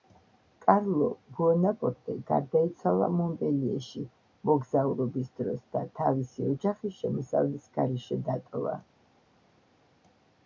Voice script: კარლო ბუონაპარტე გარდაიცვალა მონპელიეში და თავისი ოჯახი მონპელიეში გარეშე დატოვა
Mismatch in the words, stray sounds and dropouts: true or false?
true